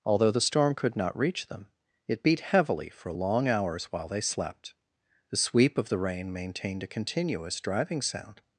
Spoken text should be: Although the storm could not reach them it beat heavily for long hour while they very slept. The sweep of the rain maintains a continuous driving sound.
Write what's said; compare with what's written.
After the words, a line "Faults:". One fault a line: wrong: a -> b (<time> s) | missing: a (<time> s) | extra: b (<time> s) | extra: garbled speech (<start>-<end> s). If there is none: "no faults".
Although the storm could not reach them it beat heavily for long hours while they slept. The sweep of the rain maintained a continuous driving sound.
Faults:
wrong: hour -> hours (3.5 s)
missing: very (4.2 s)
wrong: maintains -> maintained (6.3 s)